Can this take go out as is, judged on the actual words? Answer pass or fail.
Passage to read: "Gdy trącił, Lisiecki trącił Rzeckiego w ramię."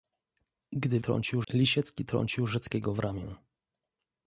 pass